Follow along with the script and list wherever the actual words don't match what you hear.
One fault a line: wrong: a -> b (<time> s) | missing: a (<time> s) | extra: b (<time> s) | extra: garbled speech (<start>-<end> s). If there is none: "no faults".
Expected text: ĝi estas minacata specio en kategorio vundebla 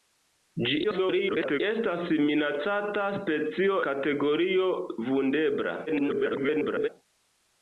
extra: garbled speech (0.8-1.6 s)
missing: en (3.8 s)
extra: garbled speech (5.9-6.9 s)